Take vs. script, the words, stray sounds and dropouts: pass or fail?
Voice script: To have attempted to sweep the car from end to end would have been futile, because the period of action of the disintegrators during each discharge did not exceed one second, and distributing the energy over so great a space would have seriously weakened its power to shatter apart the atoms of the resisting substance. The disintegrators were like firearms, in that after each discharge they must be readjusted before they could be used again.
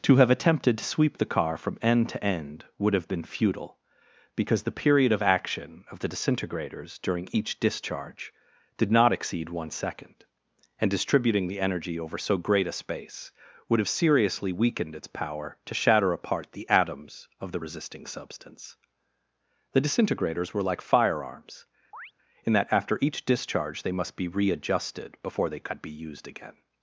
fail